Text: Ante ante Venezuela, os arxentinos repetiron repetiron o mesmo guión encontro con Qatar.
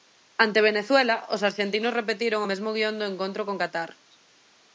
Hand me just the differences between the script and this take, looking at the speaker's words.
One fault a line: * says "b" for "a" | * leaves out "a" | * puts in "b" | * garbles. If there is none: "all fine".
* leaves out "ante"
* leaves out "repetiron"
* puts in "do"